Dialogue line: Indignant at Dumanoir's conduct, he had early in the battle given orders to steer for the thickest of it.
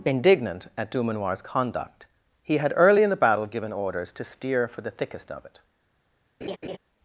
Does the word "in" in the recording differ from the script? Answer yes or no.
no